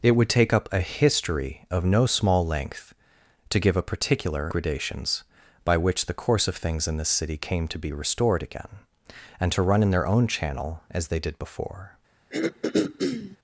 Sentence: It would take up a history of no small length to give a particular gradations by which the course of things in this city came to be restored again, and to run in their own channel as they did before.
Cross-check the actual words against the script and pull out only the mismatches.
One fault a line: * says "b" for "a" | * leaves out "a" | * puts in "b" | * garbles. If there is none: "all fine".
all fine